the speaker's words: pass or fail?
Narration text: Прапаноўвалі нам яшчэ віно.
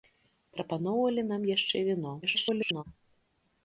fail